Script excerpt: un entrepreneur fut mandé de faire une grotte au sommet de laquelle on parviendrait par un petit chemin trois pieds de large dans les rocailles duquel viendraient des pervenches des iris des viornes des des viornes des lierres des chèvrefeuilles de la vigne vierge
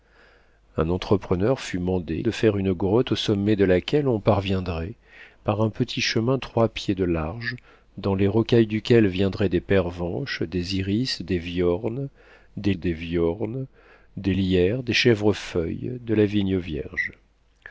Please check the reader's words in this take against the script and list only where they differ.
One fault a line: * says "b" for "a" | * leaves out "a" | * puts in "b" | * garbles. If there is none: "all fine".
all fine